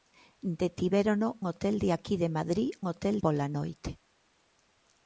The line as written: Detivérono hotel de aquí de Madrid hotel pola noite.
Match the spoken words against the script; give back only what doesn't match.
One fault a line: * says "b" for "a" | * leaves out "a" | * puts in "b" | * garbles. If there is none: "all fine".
all fine